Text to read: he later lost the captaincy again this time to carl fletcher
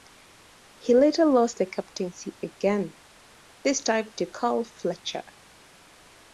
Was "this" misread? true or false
false